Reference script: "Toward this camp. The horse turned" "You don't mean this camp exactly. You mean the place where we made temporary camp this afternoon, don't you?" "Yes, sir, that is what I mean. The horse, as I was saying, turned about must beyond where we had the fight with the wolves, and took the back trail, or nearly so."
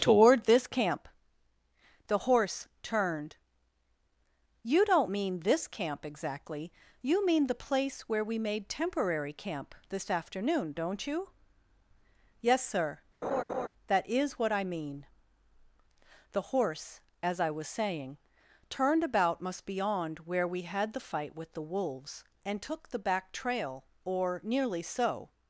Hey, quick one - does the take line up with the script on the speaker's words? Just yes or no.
yes